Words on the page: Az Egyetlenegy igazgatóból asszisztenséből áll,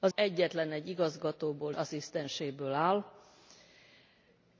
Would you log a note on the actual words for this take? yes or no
no